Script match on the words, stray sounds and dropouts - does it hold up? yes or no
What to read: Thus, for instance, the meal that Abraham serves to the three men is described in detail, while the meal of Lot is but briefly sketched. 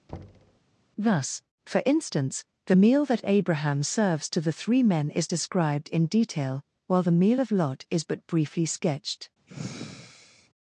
no